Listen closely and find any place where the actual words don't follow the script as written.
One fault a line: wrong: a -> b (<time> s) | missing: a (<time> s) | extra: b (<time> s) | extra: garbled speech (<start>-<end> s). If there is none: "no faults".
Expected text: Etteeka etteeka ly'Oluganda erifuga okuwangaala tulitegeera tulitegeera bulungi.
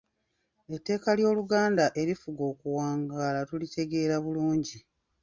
missing: etteeka (1.1 s)
missing: tulitegeera (4.1 s)